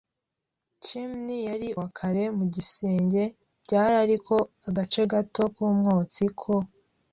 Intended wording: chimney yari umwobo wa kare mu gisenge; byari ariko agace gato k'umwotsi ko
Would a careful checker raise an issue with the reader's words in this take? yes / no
yes